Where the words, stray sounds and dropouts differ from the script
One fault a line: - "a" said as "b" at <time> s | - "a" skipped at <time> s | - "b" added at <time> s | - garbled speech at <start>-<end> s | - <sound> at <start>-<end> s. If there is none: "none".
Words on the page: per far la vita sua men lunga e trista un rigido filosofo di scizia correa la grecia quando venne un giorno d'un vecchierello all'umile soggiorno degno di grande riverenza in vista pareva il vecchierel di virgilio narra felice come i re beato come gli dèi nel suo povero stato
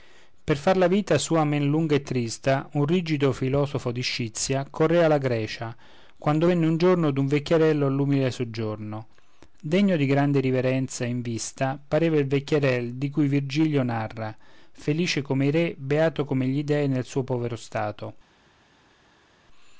- "cui" added at 13.1 s